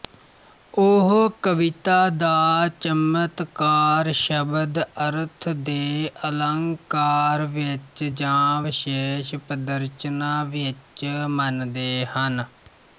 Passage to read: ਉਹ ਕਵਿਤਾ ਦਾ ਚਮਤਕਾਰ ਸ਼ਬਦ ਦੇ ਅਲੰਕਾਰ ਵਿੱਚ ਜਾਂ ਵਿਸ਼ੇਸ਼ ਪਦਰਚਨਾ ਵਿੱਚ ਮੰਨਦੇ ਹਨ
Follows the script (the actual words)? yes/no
no